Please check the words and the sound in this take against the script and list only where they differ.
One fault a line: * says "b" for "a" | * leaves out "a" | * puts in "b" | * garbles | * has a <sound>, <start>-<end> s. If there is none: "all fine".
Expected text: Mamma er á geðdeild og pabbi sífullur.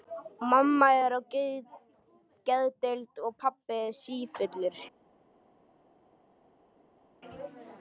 all fine